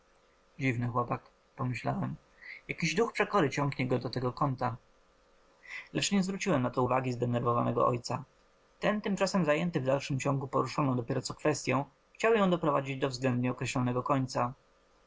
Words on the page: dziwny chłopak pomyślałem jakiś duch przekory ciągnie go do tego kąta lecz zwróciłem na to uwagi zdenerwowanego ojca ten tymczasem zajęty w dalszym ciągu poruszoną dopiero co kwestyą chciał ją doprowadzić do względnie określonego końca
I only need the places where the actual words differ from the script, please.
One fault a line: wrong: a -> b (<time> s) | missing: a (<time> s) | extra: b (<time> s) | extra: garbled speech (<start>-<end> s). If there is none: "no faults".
extra: nie (6.1 s)